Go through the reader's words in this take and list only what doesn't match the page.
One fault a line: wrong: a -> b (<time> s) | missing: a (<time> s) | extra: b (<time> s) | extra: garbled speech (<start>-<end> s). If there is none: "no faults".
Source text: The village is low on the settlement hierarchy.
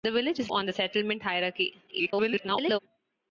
missing: low (0.5 s)
extra: garbled speech (1.9-2.8 s)